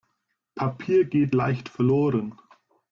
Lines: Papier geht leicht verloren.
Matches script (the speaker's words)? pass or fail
pass